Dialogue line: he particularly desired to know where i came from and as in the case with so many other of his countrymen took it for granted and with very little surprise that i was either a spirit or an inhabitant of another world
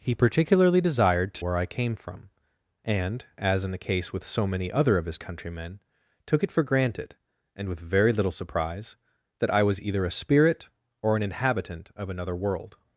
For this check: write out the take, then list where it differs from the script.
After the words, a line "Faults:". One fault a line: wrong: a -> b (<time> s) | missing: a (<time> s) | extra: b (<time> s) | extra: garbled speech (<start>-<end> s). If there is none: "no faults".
he particularly desired to where i came from and as in the case with so many other of his countrymen took it for granted and with very little surprise that i was either a spirit or an inhabitant of another world
Faults:
missing: know (1.4 s)